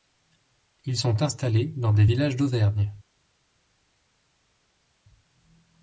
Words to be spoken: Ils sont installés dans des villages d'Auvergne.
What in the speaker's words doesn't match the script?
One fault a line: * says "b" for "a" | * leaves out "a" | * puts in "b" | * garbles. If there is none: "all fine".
all fine